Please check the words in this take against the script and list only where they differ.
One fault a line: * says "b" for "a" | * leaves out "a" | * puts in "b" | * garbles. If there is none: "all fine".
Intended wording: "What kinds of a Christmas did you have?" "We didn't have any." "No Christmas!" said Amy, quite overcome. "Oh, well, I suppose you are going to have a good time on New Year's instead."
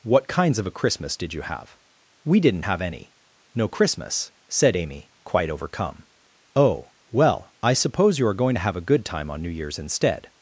all fine